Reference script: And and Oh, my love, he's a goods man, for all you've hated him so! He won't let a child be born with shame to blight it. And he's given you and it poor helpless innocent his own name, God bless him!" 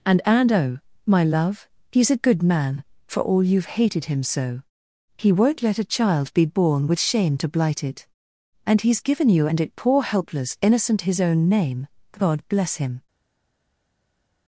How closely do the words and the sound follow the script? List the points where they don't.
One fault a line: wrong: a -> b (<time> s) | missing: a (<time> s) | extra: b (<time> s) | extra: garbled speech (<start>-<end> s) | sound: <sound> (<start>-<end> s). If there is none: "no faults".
wrong: goods -> good (2.2 s)